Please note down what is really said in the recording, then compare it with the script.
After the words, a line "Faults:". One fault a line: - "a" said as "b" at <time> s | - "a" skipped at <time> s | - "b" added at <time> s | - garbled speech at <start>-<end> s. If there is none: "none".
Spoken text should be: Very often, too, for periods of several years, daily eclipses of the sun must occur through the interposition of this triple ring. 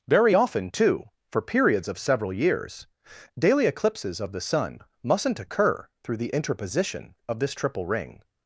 Very often, too, for periods of several years, daily eclipses of the sun mustn't occur through the interposition of this triple ring.
Faults:
- "must" said as "mustn't" at 5.0 s